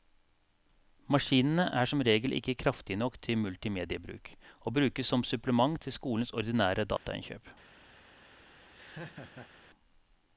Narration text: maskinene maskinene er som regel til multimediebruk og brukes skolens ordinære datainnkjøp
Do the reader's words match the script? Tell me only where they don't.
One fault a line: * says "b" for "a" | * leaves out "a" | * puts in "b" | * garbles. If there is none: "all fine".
* leaves out "maskinene"
* puts in "ikke kraftige nok"
* puts in "som supplement til"